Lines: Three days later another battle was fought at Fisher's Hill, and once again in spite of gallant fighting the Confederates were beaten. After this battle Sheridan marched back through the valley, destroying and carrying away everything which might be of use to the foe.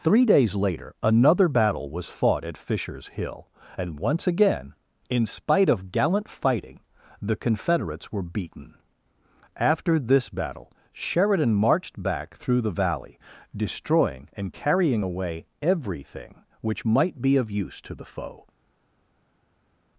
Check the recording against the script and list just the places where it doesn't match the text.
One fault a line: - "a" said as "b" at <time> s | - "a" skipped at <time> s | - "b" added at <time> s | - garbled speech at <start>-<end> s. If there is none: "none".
none